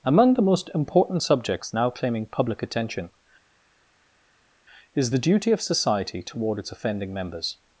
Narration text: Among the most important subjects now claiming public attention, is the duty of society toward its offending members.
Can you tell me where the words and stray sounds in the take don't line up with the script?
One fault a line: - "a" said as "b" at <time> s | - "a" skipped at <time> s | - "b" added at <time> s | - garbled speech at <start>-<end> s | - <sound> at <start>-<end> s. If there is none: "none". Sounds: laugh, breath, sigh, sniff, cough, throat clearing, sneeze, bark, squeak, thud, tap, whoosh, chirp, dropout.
none